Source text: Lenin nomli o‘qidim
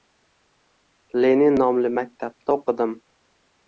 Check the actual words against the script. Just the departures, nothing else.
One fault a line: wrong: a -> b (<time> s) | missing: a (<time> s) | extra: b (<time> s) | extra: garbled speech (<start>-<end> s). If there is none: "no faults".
extra: maktabda (2.0 s)